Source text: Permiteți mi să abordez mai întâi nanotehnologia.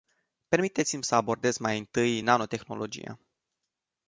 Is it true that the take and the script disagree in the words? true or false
false